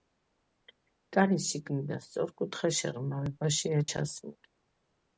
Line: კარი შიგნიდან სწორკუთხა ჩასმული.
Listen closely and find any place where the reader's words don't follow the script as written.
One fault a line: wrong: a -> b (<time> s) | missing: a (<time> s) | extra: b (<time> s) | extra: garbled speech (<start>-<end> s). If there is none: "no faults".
extra: შეღრმავებაშია (2.8 s)